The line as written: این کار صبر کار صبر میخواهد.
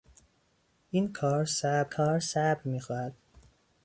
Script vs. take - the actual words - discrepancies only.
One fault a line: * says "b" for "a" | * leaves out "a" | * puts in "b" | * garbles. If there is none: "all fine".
all fine